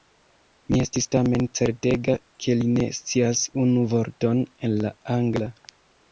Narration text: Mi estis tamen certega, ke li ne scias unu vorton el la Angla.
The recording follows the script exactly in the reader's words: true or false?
true